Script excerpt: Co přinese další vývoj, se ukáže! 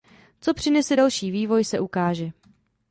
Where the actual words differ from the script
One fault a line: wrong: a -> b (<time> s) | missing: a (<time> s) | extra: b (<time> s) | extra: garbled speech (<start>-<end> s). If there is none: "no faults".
no faults